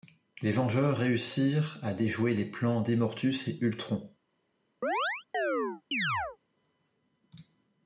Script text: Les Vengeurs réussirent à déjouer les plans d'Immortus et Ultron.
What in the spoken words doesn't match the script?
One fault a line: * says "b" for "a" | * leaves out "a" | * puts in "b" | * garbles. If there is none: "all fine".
all fine